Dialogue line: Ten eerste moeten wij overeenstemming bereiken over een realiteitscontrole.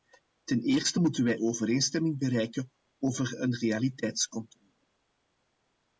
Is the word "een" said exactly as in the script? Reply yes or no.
yes